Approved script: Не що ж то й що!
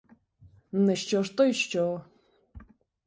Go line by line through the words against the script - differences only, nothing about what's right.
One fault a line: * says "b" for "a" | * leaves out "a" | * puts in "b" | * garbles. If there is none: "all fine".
all fine